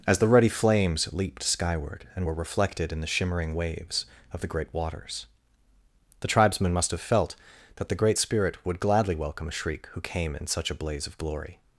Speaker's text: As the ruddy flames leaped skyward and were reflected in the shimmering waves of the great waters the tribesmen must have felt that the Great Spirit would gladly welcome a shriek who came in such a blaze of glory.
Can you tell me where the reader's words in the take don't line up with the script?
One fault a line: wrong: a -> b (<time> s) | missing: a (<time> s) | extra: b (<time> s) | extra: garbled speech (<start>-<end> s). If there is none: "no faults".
no faults